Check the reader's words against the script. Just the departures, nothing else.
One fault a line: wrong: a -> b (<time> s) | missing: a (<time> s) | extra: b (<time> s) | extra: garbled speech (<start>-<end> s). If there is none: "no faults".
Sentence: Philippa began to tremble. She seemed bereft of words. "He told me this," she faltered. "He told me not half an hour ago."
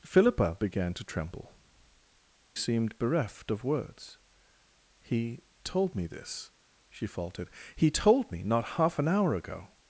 missing: She (1.6 s)